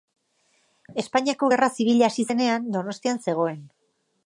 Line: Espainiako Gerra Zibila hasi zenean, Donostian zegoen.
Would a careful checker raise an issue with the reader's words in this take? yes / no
no